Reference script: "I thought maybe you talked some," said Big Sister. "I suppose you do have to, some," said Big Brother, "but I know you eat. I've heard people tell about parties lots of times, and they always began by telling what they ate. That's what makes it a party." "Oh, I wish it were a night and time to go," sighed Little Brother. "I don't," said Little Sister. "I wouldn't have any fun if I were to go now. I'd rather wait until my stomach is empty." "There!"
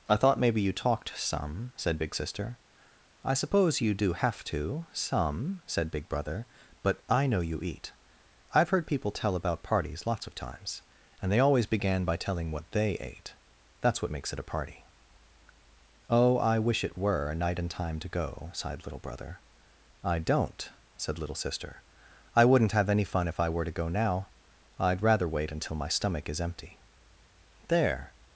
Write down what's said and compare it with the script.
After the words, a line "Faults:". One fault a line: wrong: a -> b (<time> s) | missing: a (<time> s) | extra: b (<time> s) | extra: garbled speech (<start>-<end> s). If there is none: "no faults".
"I thought maybe you talked some," said Big Sister. "I suppose you do have to, some," said Big Brother, "but I know you eat. I've heard people tell about parties lots of times, and they always began by telling what they ate. That's what makes it a party." "Oh, I wish it were a night and time to go," sighed Little Brother. "I don't," said Little Sister. "I wouldn't have any fun if I were to go now. I'd rather wait until my stomach is empty." "There!"
Faults:
no faults